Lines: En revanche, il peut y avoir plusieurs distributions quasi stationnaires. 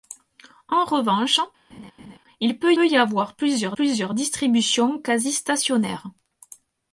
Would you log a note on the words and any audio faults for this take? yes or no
yes